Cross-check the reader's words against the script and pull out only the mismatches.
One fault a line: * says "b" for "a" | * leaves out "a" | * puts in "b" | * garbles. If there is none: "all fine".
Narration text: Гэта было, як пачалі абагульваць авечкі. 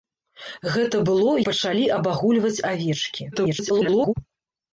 * leaves out "як"
* garbles